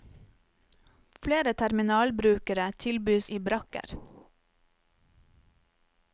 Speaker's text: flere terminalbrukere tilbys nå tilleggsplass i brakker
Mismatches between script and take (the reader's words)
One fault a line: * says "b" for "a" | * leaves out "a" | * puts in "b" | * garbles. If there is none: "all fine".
* leaves out "nå tilleggsplass"